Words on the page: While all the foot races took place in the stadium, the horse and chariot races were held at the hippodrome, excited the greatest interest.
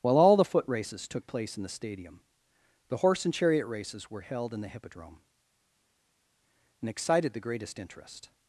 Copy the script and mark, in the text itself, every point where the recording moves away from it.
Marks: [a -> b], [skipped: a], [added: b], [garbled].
While all the foot races took place in the stadium, the horse and chariot races were held [at -> in] the hippodrome, [added: and] excited the greatest interest.